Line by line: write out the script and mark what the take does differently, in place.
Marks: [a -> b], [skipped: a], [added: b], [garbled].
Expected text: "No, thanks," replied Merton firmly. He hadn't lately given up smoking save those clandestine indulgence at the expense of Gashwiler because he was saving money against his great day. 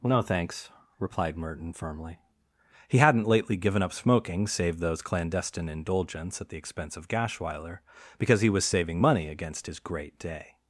"No, thanks," replied Merton firmly. He hadn't lately given up smoking save those clandestine indulgence at the expense of Gashwiler because he was saving money against his great day.